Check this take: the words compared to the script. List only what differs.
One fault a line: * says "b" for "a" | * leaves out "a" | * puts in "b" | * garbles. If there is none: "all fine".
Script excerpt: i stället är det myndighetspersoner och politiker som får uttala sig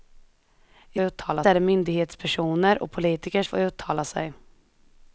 * says "uttala" for "stället"
* leaves out "som"